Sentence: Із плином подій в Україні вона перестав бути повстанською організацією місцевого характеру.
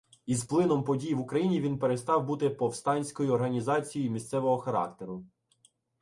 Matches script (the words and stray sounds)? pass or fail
fail